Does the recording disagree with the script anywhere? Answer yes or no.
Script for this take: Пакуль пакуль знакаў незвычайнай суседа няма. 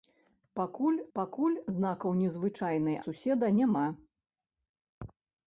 no